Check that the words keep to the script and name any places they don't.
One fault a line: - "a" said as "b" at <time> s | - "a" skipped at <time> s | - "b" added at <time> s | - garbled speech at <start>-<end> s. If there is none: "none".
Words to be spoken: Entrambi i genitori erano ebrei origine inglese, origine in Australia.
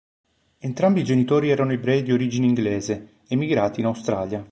- "di" added at 2.0 s
- "origine" said as "emigrati" at 3.3 s